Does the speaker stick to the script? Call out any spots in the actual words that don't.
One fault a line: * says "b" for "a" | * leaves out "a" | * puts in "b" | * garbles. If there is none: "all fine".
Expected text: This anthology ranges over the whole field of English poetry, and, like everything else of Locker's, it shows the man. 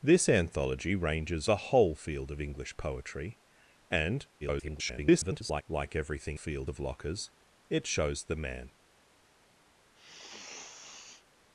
* leaves out "over"
* garbles
* says "field" for "else"